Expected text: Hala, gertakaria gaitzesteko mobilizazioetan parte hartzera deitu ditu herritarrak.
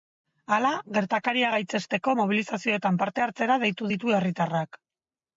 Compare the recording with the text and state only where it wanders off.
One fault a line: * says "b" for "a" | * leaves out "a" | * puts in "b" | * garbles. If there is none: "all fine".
all fine